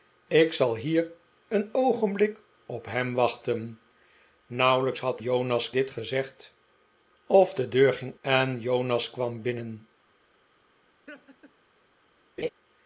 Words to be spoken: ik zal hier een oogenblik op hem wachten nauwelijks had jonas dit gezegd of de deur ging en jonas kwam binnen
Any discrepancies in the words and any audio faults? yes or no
yes